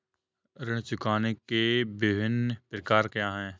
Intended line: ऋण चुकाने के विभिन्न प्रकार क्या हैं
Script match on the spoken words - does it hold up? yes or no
yes